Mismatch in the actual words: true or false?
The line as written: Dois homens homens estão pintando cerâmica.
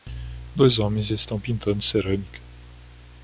true